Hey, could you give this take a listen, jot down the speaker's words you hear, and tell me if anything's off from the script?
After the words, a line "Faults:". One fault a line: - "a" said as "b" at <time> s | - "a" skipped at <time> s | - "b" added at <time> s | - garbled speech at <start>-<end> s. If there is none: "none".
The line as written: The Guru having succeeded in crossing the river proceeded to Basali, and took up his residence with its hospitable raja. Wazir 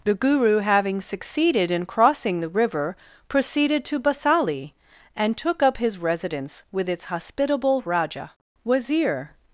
The Guru having succeeded in crossing the river proceeded to Basali, and took up his residence with its hospitable raja. Wazir
Faults:
none